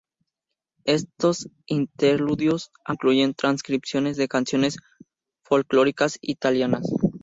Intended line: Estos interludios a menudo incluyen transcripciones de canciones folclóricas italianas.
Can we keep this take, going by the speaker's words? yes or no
no